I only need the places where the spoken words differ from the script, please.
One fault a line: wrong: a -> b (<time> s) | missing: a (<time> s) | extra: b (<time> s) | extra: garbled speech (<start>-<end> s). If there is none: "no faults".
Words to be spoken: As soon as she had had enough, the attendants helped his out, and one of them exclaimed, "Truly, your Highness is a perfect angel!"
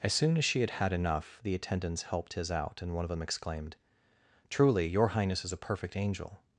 no faults